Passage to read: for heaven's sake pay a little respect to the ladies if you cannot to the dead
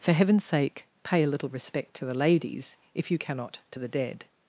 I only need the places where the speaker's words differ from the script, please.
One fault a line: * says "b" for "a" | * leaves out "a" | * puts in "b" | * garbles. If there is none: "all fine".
all fine